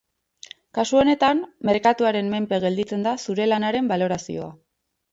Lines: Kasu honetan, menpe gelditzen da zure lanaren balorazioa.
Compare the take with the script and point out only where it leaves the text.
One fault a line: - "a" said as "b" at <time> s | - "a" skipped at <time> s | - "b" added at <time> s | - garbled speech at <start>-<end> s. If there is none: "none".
- "merkatuaren" added at 1.7 s